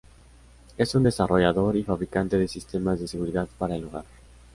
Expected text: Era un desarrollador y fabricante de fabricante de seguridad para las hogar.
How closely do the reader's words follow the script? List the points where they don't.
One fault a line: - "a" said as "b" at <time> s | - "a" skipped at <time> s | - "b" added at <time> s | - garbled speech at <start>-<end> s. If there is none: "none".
- "Era" said as "Es" at 0.8 s
- "fabricante" said as "sistemas" at 2.5 s
- "las" said as "el" at 3.8 s